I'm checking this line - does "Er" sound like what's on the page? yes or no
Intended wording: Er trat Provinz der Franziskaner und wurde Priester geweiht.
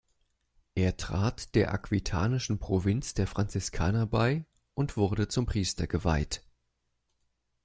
yes